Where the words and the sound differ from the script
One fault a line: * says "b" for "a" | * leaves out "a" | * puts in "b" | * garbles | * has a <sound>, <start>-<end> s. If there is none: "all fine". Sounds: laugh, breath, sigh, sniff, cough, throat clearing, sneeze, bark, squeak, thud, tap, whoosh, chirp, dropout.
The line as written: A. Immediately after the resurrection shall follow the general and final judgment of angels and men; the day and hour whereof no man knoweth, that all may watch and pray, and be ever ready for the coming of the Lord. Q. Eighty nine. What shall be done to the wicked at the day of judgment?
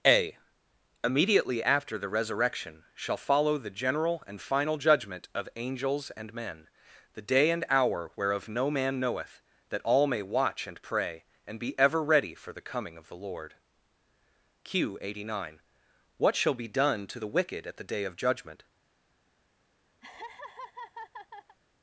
* has a laugh, 20.0-21.6 s